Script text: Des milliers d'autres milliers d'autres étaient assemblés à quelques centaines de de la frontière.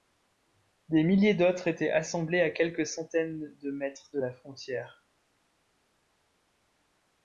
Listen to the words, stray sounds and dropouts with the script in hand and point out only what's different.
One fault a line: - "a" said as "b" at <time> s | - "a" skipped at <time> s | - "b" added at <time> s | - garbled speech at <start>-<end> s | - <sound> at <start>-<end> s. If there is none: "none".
- "milliers d'autres" skipped at 1.7 s
- "mètres" added at 3.7 s